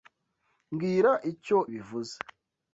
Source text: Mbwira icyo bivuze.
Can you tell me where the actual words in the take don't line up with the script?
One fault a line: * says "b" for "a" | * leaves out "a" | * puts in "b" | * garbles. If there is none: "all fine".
all fine